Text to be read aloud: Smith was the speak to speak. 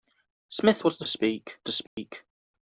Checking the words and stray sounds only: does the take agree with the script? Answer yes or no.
no